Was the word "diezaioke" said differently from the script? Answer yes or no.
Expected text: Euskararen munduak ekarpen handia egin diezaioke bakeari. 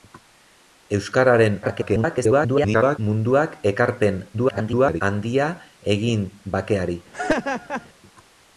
yes